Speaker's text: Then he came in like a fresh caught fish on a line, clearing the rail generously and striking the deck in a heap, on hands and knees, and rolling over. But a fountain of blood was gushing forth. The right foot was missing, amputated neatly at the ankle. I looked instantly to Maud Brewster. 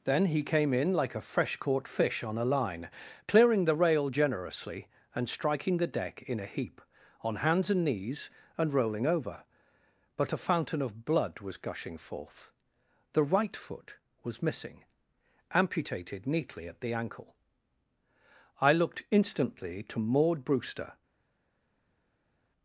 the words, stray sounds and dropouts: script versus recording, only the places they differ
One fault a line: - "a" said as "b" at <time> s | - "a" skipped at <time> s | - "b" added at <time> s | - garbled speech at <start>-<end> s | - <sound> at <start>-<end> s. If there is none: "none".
none